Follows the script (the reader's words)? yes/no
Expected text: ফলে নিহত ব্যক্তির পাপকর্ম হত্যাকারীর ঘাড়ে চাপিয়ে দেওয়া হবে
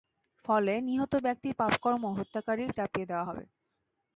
no